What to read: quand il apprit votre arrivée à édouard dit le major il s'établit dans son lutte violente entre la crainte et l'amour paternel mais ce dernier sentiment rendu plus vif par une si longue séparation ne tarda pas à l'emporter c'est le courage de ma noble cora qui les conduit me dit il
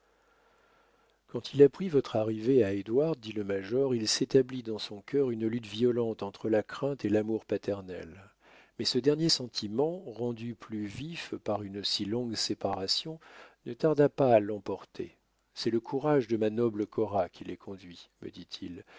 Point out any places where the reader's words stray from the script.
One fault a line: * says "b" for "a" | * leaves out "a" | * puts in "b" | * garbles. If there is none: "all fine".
* puts in "cœur une"